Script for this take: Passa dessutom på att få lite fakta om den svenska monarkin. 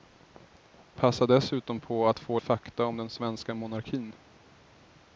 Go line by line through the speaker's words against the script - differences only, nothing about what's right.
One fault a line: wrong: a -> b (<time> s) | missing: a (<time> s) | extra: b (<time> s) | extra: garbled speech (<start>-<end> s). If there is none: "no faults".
missing: lite (2.4 s)